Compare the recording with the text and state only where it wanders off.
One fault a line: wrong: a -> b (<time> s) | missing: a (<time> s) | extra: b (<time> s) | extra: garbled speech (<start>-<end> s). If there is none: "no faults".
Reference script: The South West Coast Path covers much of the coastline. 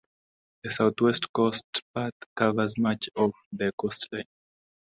no faults